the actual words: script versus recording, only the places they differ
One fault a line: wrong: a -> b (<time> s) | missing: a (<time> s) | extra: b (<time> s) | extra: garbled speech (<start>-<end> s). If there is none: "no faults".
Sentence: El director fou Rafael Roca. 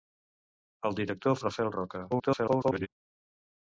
missing: fou (1.4 s)
extra: garbled speech (2.1-2.9 s)